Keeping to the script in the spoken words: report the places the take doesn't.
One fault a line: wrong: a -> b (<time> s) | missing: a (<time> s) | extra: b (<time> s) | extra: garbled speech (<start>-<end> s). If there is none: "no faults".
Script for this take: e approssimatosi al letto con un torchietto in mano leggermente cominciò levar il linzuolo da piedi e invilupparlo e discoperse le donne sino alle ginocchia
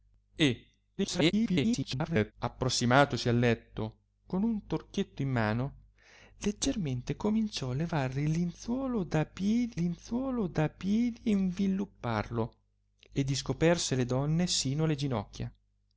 extra: garbled speech (1.0-2.3 s)
extra: linzuolo da piedi (9.7 s)